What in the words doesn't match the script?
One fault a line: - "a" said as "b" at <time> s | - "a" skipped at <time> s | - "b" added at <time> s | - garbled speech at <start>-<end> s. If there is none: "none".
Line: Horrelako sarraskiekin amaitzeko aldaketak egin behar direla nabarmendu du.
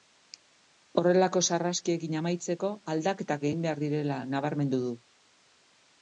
none